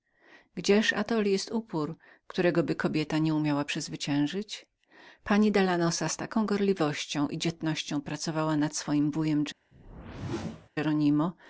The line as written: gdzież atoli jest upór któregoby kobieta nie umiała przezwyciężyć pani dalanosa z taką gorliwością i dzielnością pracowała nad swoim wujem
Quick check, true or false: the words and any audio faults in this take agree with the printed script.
false